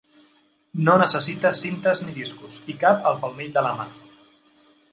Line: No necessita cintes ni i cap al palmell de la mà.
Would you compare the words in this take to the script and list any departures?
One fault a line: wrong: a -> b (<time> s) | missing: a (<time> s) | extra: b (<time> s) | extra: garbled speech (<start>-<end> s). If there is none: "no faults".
extra: discos (2.2 s)